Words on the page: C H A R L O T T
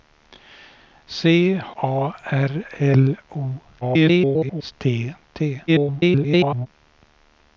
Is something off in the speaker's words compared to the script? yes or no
yes